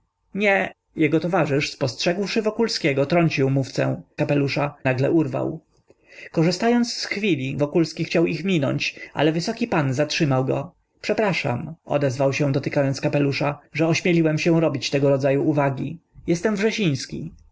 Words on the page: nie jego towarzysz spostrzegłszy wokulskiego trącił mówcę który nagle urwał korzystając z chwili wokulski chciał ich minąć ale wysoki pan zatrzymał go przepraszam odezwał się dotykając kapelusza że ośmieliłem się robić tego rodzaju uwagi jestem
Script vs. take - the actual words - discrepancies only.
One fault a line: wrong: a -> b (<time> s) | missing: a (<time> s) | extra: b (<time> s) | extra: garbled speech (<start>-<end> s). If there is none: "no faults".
wrong: który -> kapelusza (4.2 s)